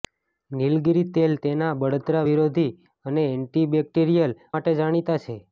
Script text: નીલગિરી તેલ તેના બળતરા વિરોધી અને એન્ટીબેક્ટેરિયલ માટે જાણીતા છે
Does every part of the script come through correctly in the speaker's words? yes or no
yes